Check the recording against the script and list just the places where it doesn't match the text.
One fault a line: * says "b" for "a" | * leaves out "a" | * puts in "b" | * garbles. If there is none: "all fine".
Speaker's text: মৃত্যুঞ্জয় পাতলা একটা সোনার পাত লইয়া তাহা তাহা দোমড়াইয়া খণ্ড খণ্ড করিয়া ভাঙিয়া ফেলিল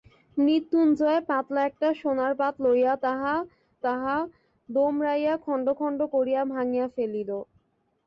all fine